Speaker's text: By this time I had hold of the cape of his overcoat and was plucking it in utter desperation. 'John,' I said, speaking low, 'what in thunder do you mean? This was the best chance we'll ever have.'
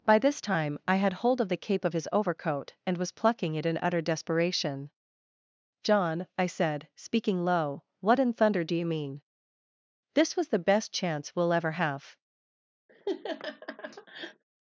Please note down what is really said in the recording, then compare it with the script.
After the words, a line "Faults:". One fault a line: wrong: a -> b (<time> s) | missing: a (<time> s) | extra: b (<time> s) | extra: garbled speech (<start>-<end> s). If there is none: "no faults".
By this time I had hold of the cape of his overcoat and was plucking it in utter desperation. 'John,' I said, speaking low, 'what in thunder do you mean? This was the best chance we'll ever have.'
Faults:
no faults